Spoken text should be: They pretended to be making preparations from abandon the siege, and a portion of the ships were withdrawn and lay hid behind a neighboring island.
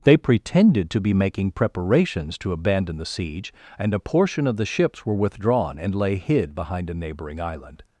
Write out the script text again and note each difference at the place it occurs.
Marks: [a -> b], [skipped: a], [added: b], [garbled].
They pretended to be making preparations [from -> to] abandon the siege, and a portion of the ships were withdrawn and lay hid behind a neighboring island.